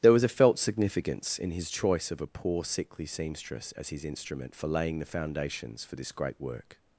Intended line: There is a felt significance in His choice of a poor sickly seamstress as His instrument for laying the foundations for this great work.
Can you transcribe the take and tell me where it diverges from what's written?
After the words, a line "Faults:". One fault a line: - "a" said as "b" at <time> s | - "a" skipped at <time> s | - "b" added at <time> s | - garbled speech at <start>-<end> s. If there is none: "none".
There was a felt significance in His choice of a poor sickly seamstress as His instrument for laying the foundations for this great work.
Faults:
- "is" said as "was" at 0.1 s